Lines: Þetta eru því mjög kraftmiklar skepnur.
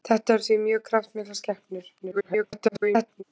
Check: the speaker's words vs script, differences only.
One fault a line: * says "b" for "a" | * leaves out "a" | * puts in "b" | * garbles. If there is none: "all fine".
* garbles